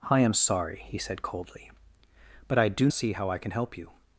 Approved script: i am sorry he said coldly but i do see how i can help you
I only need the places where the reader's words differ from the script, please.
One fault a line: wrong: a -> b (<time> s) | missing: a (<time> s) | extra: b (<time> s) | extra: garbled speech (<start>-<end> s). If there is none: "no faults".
no faults